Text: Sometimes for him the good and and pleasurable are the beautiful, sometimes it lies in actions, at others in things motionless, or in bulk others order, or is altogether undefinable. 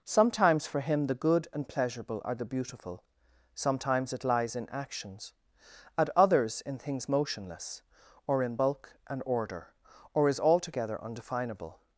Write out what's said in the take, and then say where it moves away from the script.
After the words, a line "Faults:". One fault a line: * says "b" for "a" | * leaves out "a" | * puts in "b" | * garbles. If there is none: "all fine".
Sometimes for him the good and pleasurable are the beautiful, sometimes it lies in actions, at others in things motionless, or in bulk and order, or is altogether undefinable.
Faults:
* leaves out "and"
* says "and" for "others"